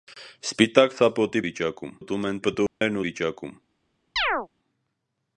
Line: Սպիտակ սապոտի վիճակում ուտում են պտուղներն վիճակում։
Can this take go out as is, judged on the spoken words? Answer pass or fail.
pass